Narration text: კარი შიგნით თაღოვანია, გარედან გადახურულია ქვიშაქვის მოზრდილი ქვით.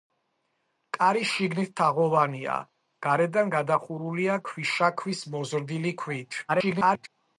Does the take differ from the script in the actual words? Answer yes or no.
yes